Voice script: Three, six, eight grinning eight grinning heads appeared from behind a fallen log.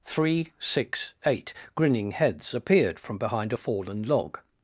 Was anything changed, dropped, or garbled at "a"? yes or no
no